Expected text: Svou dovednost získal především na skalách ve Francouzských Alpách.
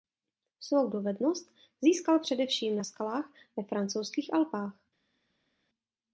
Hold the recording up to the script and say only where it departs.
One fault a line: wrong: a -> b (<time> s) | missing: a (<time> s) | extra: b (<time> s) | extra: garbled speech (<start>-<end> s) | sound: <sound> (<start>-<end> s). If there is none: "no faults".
no faults